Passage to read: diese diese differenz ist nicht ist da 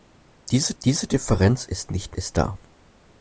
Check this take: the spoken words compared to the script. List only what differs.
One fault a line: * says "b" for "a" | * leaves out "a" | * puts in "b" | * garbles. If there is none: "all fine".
all fine